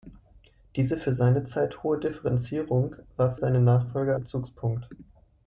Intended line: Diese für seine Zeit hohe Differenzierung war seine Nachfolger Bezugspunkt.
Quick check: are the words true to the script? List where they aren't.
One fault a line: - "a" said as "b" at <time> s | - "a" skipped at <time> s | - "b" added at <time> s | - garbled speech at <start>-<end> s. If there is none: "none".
none